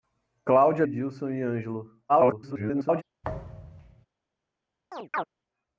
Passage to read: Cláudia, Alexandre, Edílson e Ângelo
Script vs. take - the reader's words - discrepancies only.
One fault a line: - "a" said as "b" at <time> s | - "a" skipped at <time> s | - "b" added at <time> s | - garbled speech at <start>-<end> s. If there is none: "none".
- "Alexandre" skipped at 0.8 s
- garbled speech at 2.1-3.0 s